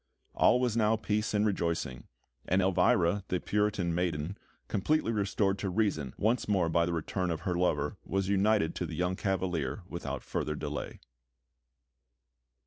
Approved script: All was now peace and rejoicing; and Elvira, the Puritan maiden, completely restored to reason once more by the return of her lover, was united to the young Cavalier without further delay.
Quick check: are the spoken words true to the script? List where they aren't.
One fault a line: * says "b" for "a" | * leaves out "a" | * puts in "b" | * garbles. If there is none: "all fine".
all fine